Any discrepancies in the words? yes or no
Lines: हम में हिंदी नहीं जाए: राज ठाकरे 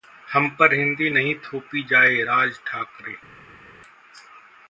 yes